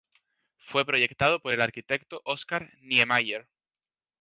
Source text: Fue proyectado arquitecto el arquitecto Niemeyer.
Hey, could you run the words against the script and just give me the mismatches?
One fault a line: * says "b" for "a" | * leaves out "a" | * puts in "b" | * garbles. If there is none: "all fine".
* says "por" for "arquitecto"
* puts in "Oscar"